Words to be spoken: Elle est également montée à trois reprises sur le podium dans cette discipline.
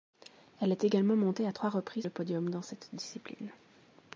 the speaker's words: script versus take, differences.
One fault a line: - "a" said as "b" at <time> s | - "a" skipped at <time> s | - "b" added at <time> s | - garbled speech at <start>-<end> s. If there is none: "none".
- "sur" skipped at 2.1 s